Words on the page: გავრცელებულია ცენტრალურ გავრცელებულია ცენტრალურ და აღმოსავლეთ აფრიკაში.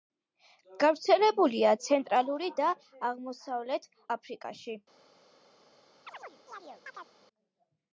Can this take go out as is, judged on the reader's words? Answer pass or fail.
fail